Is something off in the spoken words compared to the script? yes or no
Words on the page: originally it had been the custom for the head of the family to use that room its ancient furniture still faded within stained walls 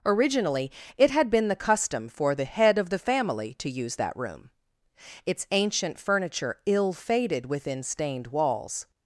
yes